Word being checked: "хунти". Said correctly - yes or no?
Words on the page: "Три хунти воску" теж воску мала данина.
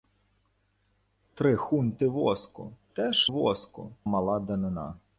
yes